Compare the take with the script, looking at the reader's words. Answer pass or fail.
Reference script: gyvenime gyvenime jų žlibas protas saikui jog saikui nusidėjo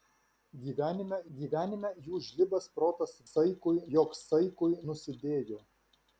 pass